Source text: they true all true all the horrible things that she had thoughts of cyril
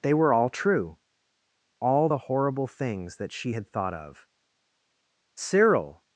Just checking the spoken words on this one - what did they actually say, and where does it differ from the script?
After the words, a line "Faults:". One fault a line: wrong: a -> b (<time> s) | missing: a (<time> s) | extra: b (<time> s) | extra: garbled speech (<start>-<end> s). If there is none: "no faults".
they were all true all the horrible things that she had thought of cyril
Faults:
wrong: true -> were (0.1 s)
wrong: thoughts -> thought (3.7 s)